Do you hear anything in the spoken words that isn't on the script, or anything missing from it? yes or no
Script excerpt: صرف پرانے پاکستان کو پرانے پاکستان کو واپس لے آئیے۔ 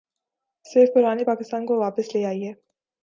yes